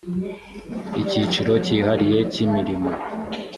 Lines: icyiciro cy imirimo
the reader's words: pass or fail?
fail